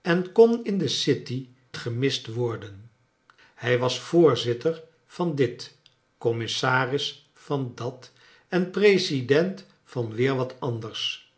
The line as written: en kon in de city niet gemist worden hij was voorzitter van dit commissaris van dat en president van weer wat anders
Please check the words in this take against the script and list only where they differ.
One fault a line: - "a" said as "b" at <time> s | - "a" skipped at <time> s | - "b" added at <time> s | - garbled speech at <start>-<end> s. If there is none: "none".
- "niet" skipped at 1.5 s